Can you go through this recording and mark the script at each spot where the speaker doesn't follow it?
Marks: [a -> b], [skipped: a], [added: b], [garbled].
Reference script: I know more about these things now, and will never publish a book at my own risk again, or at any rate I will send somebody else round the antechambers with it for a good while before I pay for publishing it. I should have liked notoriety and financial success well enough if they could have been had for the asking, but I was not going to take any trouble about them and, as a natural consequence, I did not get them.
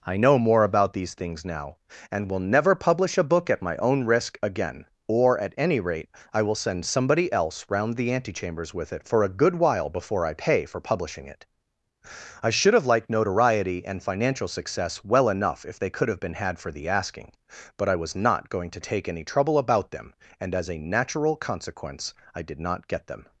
I know more about these things now, and will never publish a book at my own risk again, or at any rate I will send somebody else round the antechambers with it for a good while before I pay for publishing it. I should have liked notoriety and financial success well enough if they could have been had for the asking, but I was not going to take any trouble about them and, as a natural consequence, I did not get them.